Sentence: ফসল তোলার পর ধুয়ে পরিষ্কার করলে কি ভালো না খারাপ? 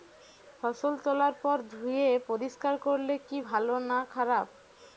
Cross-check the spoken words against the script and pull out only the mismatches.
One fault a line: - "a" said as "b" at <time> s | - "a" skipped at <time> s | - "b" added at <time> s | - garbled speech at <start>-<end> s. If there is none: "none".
none